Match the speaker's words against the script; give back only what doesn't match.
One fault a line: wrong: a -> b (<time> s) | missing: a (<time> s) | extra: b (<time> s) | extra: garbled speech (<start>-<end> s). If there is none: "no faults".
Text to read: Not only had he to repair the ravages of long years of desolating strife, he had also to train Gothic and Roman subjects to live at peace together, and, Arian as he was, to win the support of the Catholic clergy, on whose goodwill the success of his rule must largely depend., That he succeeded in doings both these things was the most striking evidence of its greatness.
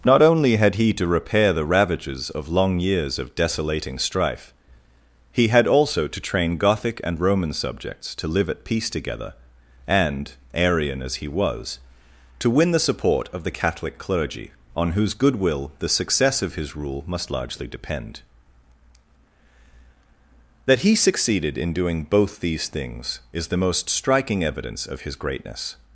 wrong: doings -> doing (21.7 s)
wrong: was -> is (23.3 s)
wrong: its -> his (25.0 s)